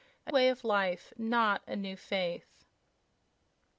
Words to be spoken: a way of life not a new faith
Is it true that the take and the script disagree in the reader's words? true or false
false